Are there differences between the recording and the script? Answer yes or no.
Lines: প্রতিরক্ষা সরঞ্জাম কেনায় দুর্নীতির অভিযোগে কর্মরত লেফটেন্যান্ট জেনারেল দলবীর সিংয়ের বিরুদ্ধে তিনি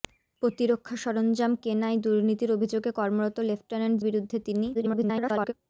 yes